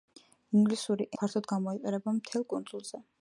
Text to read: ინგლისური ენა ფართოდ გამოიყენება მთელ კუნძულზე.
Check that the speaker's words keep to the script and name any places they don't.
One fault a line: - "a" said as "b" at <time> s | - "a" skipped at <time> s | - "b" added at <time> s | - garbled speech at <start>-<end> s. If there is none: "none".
- "ენა" skipped at 1.1 s